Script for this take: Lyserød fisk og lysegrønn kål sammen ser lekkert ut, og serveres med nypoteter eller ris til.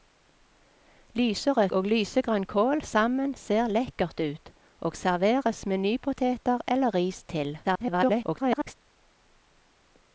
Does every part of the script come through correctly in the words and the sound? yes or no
no